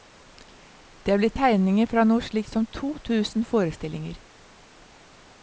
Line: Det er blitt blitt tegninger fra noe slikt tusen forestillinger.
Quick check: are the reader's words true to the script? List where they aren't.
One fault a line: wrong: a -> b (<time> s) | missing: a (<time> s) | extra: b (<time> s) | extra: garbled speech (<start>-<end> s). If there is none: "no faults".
missing: blitt (1.4 s)
extra: som to (2.5 s)